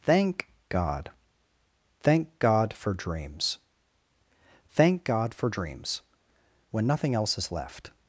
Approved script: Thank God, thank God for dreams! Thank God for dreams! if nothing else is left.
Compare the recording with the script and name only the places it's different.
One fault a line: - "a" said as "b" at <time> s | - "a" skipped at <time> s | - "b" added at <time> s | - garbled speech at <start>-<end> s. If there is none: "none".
- "if" said as "when" at 6.7 s